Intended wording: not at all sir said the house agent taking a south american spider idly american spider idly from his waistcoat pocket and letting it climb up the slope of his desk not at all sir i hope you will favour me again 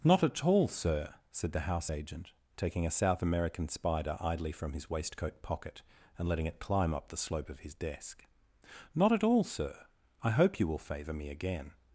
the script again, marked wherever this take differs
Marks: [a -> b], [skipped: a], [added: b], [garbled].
not at all sir said the house agent taking a south american spider idly [skipped: american spider idly] from his waistcoat pocket and letting it climb up the slope of his desk not at all sir i hope you will favour me again